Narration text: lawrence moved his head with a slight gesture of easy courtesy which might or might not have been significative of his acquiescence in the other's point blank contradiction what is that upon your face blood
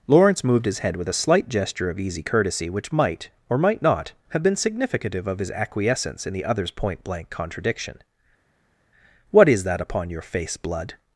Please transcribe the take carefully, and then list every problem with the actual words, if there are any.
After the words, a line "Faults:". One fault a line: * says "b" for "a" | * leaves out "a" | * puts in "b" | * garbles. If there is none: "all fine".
lawrence moved his head with a slight gesture of easy courtesy which might or might not have been significative of his acquiescence in the other's point blank contradiction what is that upon your face blood
Faults:
all fine